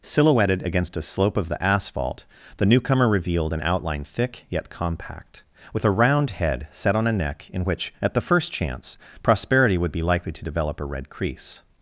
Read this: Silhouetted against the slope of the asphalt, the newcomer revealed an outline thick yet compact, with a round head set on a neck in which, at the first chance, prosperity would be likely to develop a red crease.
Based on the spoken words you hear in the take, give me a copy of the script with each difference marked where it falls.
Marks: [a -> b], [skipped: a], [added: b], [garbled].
Silhouetted against [the -> a] slope of the asphalt, the newcomer revealed an outline thick yet compact, with a round head set on a neck in which, at the first chance, prosperity would be likely to develop a red crease.